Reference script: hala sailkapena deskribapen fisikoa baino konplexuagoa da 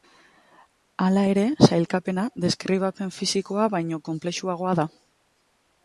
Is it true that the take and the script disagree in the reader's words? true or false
true